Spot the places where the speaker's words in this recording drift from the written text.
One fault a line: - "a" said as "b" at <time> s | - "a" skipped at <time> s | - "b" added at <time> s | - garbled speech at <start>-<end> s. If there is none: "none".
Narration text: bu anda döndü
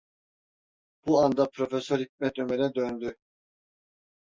- "profesör hikmet ömer'e" added at 1.5 s